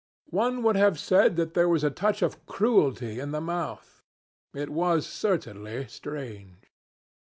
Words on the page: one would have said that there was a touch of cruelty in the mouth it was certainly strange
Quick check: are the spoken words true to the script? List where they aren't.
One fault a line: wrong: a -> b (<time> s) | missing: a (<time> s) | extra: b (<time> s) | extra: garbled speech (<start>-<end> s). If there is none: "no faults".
no faults